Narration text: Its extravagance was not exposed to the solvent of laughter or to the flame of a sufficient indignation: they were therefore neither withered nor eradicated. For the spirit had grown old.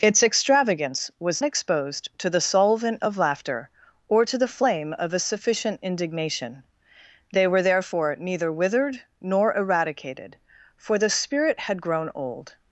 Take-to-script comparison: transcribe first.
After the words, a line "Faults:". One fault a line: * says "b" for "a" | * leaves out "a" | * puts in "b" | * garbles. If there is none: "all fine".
Its extravagance was exposed to the solvent of laughter or to the flame of a sufficient indignation: they were therefore neither withered nor eradicated. For the spirit had grown old.
Faults:
* leaves out "not"